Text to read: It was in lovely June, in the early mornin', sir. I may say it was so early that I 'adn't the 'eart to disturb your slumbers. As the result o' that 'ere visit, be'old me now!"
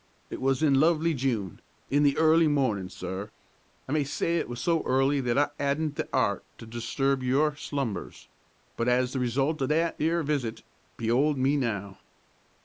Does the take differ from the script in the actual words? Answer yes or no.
yes